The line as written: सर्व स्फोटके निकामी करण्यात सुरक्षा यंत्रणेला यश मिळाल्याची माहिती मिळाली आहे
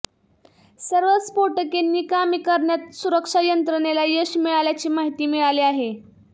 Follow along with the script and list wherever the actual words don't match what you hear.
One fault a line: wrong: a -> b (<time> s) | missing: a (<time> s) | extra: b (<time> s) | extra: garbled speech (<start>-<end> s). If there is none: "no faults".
no faults